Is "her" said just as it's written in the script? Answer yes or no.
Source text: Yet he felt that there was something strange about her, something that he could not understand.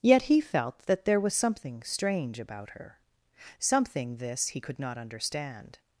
yes